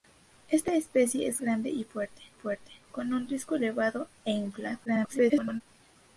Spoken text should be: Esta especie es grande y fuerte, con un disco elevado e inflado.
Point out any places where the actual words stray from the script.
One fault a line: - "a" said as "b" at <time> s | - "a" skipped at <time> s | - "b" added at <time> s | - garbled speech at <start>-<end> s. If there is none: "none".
- "fuerte" added at 2.3 s
- garbled speech at 4.9-5.6 s